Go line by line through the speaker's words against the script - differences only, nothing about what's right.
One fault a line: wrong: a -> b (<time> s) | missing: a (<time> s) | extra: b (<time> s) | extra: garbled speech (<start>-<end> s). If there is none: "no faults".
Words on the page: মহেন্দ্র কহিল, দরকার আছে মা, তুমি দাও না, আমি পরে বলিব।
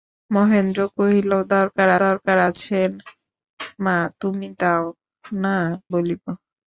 extra: দরকার (2.0 s)
missing: আমি পরে (5.6 s)